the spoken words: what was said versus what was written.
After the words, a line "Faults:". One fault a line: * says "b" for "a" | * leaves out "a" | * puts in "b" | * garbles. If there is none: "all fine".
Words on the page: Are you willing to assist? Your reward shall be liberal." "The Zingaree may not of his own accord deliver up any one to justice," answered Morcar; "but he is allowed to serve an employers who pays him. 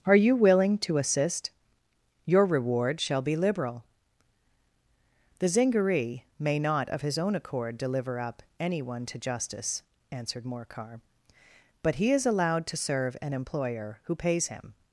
Are you willing to assist? Your reward shall be liberal." "The Zingaree may not of his own accord deliver up any one to justice," answered Morcar; "but he is allowed to serve an employer who pays him.
Faults:
* says "employer" for "employers"